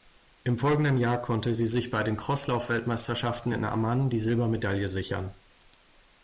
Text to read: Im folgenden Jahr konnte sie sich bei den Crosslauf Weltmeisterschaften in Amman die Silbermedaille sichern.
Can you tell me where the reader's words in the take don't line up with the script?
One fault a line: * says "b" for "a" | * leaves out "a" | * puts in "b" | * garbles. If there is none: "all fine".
all fine